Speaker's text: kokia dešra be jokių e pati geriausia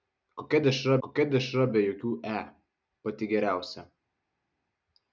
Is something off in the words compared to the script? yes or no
yes